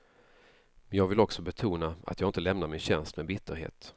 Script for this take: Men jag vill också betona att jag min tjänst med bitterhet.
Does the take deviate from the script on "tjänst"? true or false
false